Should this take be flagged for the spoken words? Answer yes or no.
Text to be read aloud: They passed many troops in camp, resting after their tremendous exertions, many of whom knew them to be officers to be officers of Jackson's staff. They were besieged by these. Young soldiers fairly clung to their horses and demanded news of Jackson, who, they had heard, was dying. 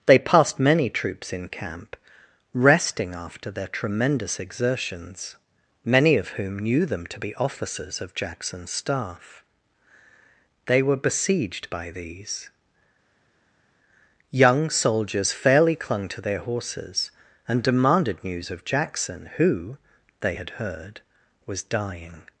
yes